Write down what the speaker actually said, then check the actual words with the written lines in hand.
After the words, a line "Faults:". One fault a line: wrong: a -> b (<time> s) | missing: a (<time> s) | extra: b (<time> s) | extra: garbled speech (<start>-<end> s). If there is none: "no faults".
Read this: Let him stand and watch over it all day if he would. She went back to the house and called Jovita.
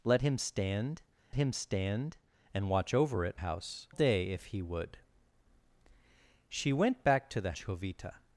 Let him stand him stand and watch over it house day if he would. She went back to the Jovita.
Faults:
extra: him stand (1.4 s)
wrong: all -> house (3.3 s)
missing: house and called (7.5 s)